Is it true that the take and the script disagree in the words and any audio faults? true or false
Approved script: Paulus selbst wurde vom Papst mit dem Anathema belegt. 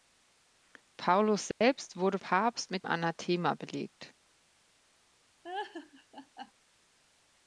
true